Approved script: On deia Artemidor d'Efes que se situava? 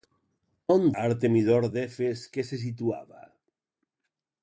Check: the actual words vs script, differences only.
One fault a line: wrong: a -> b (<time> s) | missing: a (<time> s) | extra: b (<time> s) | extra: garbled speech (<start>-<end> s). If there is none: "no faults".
missing: deia (0.9 s)